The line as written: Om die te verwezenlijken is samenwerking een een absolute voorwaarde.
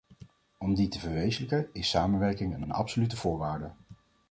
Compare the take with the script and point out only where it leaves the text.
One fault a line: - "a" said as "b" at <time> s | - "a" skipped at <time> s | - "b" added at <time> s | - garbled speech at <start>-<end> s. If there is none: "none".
none